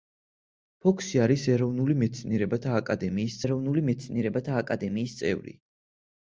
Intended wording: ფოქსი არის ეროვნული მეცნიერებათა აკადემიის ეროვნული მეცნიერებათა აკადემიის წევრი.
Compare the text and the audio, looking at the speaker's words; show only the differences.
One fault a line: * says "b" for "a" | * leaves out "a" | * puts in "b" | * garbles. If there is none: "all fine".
all fine